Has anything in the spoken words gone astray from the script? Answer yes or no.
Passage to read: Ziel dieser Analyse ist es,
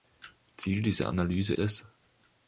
yes